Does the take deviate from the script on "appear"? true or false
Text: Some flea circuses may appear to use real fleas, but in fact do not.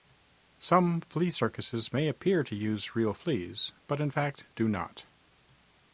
false